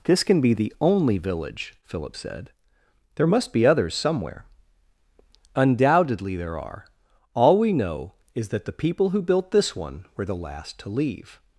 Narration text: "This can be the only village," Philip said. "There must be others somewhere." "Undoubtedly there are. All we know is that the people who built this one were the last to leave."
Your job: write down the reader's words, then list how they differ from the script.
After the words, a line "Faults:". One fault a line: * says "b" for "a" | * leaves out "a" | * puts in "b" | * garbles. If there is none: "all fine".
"This can be the only village," Philip said. "There must be others somewhere." "Undoubtedly there are. All we know is that the people who built this one were the last to leave."
Faults:
all fine